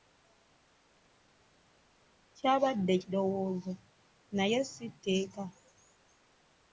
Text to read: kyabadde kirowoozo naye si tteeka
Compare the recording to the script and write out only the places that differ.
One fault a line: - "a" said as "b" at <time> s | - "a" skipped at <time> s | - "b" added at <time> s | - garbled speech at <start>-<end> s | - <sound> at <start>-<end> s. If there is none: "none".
none